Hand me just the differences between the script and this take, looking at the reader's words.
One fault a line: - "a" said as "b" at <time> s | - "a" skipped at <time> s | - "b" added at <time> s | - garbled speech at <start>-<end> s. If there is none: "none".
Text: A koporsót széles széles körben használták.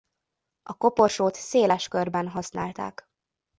- "széles" skipped at 1.9 s